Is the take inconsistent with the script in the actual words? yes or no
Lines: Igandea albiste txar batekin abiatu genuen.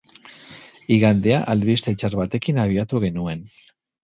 no